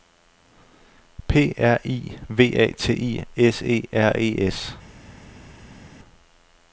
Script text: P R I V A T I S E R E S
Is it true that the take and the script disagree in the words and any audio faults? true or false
false